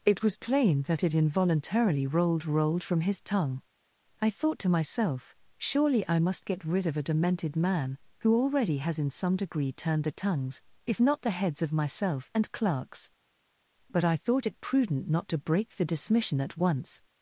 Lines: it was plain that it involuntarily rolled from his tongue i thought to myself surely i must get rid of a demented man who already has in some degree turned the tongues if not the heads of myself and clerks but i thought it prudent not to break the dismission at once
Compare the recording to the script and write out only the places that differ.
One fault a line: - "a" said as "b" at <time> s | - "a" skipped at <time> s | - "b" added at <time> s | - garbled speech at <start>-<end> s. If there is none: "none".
- "rolled" added at 2.5 s